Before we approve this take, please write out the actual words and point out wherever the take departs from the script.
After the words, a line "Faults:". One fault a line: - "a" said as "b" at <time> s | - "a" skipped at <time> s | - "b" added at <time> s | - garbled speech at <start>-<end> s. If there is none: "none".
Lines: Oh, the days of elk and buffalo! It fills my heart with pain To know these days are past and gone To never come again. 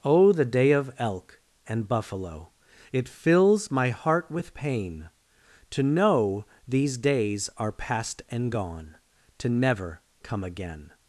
Oh, the day of elk and buffalo! It fills my heart with pain To know these days are past and gone To never come again.
Faults:
- "days" said as "day" at 0.5 s